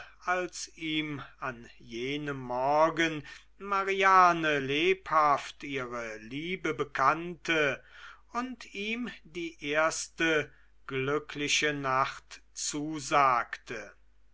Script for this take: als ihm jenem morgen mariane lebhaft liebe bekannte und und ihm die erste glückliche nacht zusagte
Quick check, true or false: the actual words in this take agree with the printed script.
false